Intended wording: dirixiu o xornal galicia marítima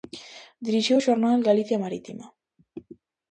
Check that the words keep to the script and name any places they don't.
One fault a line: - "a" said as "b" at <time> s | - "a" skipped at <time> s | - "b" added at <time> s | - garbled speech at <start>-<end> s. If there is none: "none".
none